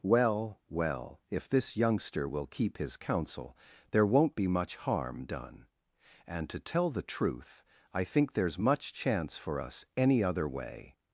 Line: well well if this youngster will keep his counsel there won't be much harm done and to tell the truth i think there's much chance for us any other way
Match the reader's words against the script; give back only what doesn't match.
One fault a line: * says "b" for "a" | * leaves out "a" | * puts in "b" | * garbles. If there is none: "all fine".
all fine